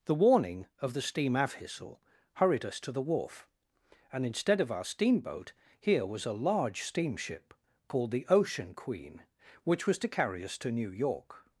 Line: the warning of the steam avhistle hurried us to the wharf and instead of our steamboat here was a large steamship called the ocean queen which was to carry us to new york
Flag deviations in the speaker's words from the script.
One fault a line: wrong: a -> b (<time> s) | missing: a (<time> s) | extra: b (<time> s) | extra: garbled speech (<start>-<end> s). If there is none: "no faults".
no faults